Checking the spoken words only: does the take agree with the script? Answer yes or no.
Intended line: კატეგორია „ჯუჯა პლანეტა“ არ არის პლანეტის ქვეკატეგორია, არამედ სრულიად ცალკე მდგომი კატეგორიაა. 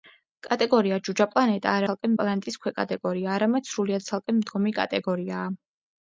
no